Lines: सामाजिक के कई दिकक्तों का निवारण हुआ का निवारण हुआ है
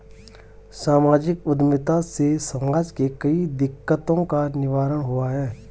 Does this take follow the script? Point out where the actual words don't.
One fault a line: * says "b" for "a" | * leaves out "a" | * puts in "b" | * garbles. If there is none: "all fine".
* puts in "उद्यमिता से समाज"
* leaves out "का निवारण हुआ"